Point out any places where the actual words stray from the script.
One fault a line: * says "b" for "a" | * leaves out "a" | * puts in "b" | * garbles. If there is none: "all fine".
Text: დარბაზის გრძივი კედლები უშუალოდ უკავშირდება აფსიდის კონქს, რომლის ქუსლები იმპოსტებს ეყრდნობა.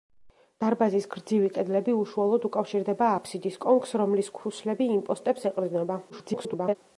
* garbles